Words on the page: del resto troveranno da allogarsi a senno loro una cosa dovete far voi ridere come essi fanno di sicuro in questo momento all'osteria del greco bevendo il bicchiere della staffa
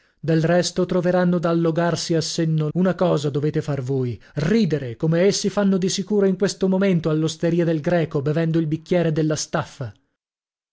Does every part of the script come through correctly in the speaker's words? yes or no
no